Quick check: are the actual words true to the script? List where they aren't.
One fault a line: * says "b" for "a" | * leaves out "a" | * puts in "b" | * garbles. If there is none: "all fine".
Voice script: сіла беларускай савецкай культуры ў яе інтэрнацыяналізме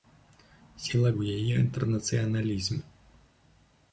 * leaves out "беларускай савецкай культуры"